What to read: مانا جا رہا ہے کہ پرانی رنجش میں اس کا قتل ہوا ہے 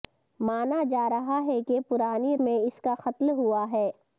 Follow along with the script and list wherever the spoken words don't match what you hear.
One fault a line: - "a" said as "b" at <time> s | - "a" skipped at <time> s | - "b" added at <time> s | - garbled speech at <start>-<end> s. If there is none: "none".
- "رنجش" skipped at 2.4 s